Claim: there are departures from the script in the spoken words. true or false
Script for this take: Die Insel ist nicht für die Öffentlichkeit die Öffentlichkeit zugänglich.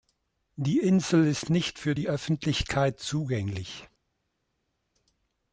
true